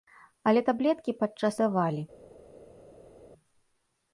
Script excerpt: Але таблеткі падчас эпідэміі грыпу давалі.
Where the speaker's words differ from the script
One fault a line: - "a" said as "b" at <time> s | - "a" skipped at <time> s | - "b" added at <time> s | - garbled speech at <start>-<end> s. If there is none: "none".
- "эпідэміі грыпу" skipped at 1.6 s